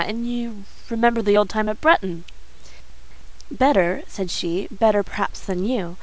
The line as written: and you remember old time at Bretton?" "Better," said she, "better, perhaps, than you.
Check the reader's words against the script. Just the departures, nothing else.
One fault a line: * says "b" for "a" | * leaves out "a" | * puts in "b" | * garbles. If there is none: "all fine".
* puts in "the"